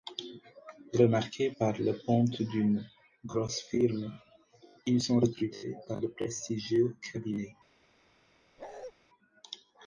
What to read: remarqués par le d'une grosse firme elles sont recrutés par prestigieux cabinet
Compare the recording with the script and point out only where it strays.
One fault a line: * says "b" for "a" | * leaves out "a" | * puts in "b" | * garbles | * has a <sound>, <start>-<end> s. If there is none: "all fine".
* puts in "ponte"
* says "ils" for "elles"
* puts in "le"
* has a bark, 8.6-8.9 s